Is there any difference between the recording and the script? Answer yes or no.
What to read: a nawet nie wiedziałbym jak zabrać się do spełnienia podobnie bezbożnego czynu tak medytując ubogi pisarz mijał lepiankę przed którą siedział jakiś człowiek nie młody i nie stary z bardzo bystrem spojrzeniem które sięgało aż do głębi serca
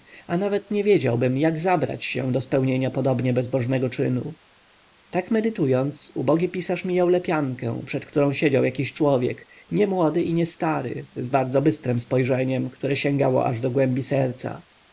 no